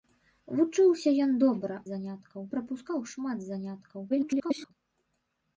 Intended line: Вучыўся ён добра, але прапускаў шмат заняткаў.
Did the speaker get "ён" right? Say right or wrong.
right